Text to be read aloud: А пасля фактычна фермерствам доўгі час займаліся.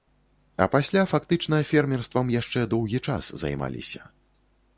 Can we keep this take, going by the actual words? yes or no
no